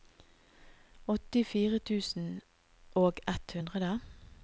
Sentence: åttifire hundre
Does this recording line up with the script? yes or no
no